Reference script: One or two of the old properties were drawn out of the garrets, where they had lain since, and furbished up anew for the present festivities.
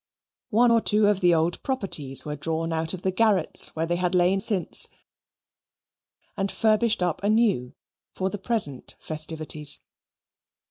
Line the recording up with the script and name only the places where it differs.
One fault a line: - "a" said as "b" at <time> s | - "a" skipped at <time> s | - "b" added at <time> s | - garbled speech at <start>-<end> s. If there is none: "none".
none